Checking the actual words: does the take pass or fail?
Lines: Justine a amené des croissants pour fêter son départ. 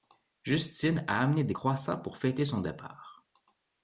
pass